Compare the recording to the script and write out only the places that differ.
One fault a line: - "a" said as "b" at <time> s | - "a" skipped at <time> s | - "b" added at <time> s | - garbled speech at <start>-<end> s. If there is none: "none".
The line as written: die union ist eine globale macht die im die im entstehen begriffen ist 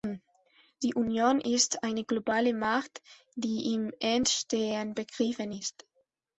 - "die im" skipped at 3.9 s